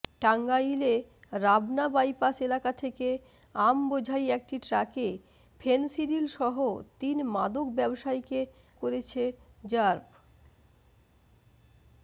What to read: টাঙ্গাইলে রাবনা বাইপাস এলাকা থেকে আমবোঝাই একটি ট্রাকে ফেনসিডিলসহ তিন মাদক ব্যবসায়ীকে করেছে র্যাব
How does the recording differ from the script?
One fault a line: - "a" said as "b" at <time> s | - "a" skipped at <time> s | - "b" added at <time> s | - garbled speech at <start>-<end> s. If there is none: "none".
none